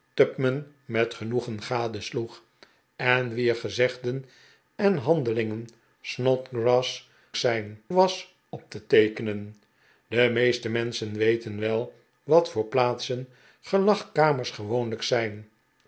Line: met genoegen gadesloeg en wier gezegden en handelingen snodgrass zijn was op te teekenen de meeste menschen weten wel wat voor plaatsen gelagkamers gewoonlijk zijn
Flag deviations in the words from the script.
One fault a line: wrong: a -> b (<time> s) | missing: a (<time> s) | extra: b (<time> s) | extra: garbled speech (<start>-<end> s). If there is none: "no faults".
no faults